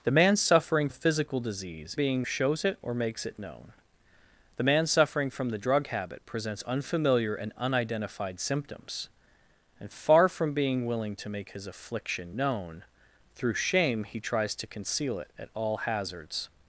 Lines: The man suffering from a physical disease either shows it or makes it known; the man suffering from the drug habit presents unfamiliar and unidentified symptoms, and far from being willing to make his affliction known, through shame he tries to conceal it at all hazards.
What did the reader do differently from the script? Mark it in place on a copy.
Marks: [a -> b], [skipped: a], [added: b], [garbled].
The man suffering [skipped: from] a physical disease [either -> being] shows it or makes it known; the man suffering from the drug habit presents unfamiliar and unidentified symptoms, and far from being willing to make his affliction known, through shame he tries to conceal it at all hazards.